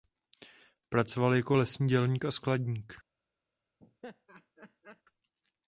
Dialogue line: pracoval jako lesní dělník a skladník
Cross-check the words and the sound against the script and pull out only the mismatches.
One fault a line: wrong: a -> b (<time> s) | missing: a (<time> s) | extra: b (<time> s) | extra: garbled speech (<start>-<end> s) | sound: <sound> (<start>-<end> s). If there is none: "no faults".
sound: laugh (3.8-5.0 s)